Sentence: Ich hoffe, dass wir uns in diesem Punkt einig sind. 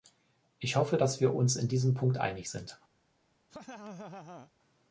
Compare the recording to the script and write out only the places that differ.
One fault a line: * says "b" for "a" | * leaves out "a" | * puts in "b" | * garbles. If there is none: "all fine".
all fine